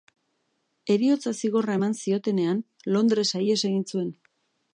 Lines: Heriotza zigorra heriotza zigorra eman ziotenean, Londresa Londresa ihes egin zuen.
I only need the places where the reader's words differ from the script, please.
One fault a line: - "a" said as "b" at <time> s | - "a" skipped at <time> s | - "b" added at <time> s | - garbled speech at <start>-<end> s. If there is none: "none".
- "heriotza zigorra" skipped at 1.8 s
- "Londresa" skipped at 3.4 s